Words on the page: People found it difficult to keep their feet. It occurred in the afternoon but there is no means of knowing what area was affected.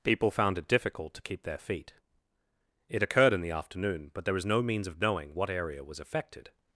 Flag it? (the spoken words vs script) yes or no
yes